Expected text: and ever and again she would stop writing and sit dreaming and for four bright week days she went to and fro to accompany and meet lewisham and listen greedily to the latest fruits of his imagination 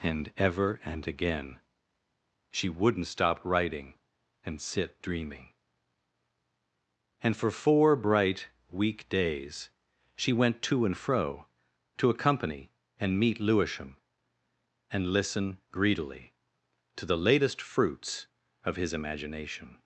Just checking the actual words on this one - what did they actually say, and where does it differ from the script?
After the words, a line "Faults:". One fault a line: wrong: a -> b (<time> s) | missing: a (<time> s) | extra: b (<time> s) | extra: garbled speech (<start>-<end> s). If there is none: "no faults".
and ever and again she wouldn't stop writing and sit dreaming and for four bright week days she went to and fro to accompany and meet lewisham and listen greedily to the latest fruits of his imagination
Faults:
wrong: would -> wouldn't (2.7 s)